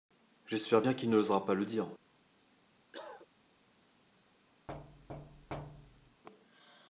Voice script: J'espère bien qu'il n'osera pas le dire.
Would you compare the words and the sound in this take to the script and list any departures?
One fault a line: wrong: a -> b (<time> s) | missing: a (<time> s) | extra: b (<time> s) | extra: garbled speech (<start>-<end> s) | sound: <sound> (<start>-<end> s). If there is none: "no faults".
sound: cough (2.9-3.3 s)
sound: thud (4.7-6.2 s)